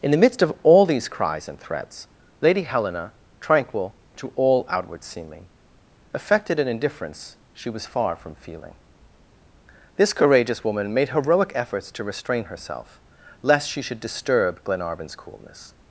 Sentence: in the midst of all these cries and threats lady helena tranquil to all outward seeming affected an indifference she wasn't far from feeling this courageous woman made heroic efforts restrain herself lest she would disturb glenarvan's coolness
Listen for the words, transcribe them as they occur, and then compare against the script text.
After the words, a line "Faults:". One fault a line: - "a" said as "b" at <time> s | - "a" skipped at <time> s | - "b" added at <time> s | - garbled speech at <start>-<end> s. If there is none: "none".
in the midst of all these cries and threats lady helena tranquil to all outward seeming affected an indifference she was far from feeling this courageous woman made heroic efforts to restrain herself lest she should disturb glenarvan's coolness
Faults:
- "wasn't" said as "was" at 7.7 s
- "to" added at 11.9 s
- "would" said as "should" at 13.8 s